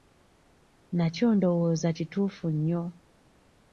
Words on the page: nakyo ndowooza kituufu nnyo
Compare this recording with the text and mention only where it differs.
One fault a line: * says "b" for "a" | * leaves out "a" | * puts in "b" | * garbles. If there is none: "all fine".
all fine